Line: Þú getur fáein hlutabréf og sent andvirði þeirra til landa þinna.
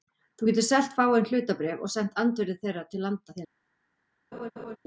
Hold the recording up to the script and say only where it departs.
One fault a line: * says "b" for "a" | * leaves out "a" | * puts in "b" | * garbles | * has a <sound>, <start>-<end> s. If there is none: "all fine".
* puts in "selt"
* has a laugh, 4.3-4.8 s